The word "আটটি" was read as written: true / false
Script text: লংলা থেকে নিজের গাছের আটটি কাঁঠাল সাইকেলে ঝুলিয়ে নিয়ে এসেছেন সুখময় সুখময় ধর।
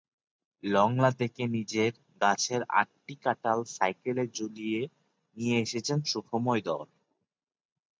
true